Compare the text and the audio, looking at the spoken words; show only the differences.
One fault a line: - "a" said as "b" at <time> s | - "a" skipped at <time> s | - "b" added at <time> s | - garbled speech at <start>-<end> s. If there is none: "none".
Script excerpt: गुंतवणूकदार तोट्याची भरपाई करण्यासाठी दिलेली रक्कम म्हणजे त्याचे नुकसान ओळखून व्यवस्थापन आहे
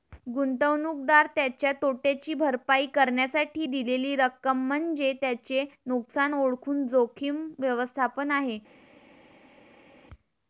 - "त्याच्या" added at 1.3 s
- "जोखीम" added at 6.9 s